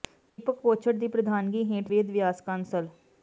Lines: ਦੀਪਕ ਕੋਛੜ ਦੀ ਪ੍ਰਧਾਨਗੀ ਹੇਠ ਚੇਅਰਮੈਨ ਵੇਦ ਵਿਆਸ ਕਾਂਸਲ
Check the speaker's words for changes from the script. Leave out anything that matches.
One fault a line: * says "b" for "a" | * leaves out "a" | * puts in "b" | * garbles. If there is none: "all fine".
* leaves out "ਚੇਅਰਮੈਨ"